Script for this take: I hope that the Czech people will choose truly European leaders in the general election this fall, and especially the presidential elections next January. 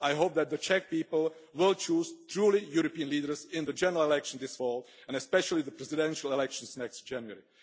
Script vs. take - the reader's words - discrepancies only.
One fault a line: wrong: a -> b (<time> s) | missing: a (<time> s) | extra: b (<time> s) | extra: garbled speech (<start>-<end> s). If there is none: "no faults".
no faults